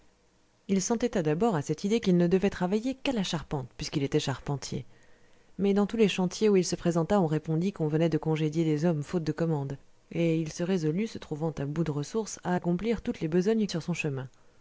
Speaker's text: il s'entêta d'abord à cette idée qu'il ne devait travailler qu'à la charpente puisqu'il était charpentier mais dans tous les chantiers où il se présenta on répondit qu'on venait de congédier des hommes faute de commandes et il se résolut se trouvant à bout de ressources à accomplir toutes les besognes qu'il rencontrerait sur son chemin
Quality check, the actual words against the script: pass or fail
fail